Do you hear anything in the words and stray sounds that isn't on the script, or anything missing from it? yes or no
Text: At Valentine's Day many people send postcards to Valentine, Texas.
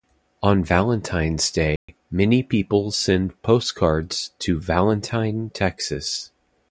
yes